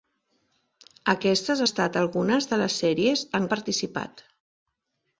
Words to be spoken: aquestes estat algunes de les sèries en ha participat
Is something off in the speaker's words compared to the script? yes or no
no